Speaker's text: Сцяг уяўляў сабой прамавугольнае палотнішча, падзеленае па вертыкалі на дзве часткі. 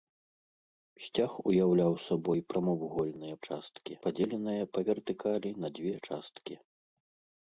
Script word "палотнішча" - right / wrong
wrong